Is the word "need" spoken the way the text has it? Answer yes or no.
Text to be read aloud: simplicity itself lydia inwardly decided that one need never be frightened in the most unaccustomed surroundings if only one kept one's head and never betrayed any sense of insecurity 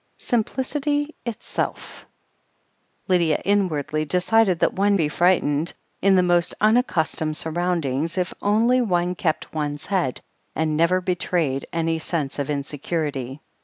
no